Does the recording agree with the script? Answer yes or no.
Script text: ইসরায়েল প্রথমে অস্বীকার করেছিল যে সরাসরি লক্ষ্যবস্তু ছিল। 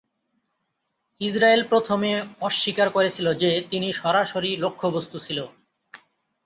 no